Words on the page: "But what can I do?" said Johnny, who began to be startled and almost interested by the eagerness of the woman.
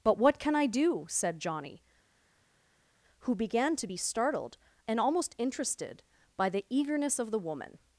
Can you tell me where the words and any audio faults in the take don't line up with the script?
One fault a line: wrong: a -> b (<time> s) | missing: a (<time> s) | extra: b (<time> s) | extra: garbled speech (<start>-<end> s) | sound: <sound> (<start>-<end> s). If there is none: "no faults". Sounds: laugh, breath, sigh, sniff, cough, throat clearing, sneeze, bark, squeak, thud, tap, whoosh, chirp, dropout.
no faults